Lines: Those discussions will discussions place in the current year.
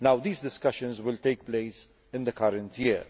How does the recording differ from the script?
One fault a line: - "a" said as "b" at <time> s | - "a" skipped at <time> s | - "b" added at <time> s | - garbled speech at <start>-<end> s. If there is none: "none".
- "Those" said as "These" at 0.2 s
- "discussions" said as "take" at 1.2 s